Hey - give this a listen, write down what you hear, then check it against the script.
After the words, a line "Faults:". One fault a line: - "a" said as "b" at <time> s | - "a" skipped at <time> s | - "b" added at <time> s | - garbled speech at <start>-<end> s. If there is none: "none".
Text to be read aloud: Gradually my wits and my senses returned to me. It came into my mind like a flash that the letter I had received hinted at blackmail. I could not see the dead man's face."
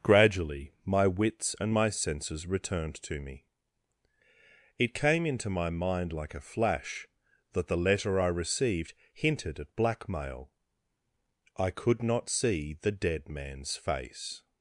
Gradually my wits and my senses returned to me. It came into my mind like a flash that the letter I received hinted at blackmail. I could not see the dead man's face."
Faults:
- "had" skipped at 8.3 s